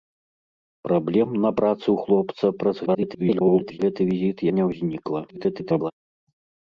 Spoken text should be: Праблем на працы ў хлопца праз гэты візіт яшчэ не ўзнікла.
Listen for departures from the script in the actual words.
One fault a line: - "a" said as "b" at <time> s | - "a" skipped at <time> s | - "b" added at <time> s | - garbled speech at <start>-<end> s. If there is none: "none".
- garbled speech at 2.9-3.8 s
- "яшчэ" skipped at 4.4 s
- garbled speech at 5.3-5.9 s